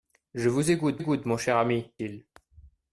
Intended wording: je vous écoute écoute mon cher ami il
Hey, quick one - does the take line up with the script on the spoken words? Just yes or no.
yes